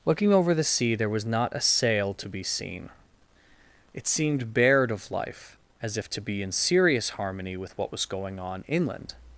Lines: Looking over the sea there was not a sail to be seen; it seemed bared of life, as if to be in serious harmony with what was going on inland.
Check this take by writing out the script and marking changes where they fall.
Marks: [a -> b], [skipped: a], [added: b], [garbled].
Looking over the sea there was not a sail to be seen; it seemed bared of life, as if to be in serious harmony with what was going on inland.